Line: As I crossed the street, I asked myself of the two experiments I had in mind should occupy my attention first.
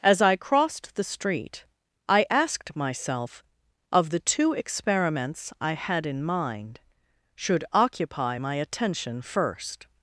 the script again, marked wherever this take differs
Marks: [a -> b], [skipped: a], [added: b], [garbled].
As I crossed the street, I asked myself of the two experiments I had in mind should occupy my attention first.